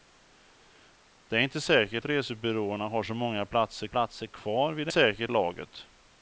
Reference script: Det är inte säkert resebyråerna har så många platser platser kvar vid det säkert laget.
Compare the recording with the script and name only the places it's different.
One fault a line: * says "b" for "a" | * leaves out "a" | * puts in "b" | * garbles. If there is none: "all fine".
all fine